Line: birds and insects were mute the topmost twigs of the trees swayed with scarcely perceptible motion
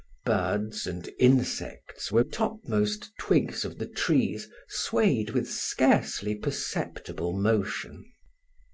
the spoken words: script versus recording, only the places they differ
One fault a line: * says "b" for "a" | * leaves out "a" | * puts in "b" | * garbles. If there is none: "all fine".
* leaves out "mute the"